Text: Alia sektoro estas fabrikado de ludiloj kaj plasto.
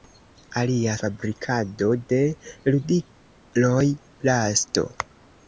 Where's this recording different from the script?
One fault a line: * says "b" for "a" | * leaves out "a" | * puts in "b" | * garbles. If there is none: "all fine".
* leaves out "sektoro estas"
* leaves out "kaj"